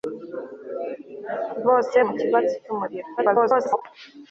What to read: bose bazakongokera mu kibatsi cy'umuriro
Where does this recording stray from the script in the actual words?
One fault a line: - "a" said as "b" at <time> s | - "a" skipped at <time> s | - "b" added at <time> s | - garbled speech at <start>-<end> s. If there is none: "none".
- "bazakongokera" skipped at 2.0 s
- garbled speech at 3.2-3.8 s